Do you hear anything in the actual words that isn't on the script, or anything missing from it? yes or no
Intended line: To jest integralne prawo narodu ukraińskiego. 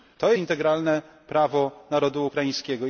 yes